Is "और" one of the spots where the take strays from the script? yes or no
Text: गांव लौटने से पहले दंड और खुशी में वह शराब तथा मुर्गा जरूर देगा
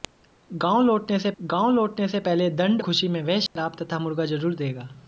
yes